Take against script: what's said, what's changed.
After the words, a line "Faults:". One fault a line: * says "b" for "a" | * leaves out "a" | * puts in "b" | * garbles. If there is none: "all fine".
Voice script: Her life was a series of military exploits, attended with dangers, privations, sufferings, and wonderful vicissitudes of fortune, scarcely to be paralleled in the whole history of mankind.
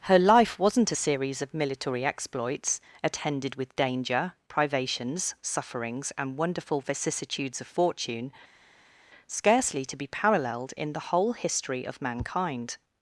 Her life wasn't a series of military exploits, attended with danger, privations, sufferings, and wonderful vicissitudes of fortune, scarcely to be paralleled in the whole history of mankind.
Faults:
* says "wasn't" for "was"
* says "danger" for "dangers"